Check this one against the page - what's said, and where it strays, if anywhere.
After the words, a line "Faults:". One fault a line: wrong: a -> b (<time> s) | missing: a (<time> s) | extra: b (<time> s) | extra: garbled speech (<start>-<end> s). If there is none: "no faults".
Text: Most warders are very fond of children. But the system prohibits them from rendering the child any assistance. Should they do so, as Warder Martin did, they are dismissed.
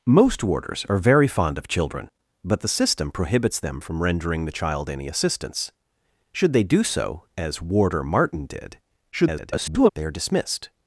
Most warders are very fond of children. But the system prohibits them from rendering the child any assistance. Should they do so, as Warder Martin did, [garbled] they are dismissed.
Faults:
extra: garbled speech (9.1-9.9 s)